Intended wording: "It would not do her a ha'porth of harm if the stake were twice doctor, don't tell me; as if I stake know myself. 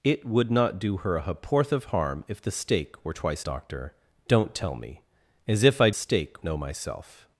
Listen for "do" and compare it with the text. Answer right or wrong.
right